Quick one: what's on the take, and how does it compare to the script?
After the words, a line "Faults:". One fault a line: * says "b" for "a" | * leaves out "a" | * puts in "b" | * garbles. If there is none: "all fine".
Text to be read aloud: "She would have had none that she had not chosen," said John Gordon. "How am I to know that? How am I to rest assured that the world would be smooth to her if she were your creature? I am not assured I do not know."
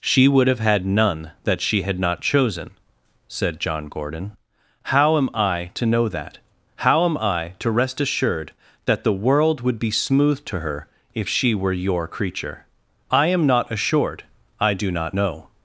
"She would have had none that she had not chosen," said John Gordon. "How am I to know that? How am I to rest assured that the world would be smooth to her if she were your creature? I am not assured I do not know."
Faults:
all fine